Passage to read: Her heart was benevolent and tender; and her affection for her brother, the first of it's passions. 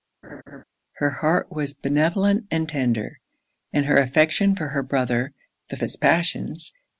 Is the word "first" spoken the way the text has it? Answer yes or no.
no